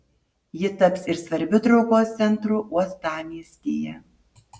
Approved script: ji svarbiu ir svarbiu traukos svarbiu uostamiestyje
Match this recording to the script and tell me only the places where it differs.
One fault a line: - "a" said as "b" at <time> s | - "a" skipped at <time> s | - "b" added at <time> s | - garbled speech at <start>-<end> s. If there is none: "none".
- "svarbiu" said as "taps" at 0.8 s
- "svarbiu" said as "centru" at 2.2 s